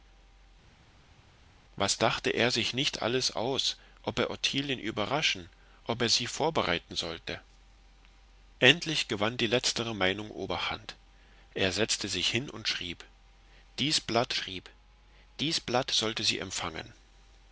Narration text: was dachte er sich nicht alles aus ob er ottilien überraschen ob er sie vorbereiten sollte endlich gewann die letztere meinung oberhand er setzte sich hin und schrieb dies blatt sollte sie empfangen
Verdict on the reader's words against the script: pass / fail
fail